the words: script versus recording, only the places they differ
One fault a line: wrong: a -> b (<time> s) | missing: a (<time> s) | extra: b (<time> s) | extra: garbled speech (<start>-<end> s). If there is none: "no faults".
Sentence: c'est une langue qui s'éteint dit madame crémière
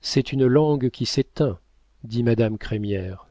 no faults